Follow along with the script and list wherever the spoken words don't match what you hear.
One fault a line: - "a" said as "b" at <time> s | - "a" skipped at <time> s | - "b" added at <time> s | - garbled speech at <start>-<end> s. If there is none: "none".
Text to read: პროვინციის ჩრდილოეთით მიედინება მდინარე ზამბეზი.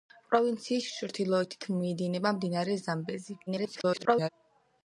- garbled speech at 3.5-4.3 s